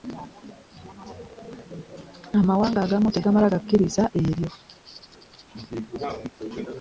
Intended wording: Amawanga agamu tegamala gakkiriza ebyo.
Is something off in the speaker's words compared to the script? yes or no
no